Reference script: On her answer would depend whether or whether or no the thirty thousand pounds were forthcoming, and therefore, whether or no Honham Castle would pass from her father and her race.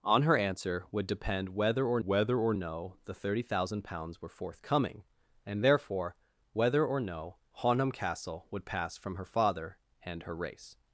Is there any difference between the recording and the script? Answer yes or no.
no